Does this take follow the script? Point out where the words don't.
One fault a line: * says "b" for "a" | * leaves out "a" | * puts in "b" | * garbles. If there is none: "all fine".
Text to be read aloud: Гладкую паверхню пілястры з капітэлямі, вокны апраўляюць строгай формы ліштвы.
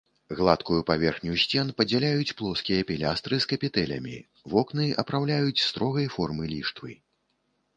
* puts in "сцен падзяляюць плоскія"